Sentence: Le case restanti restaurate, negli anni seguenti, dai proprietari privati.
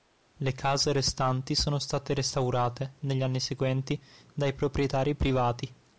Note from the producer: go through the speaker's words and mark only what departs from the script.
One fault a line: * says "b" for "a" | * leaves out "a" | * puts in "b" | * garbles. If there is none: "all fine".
* puts in "sono state"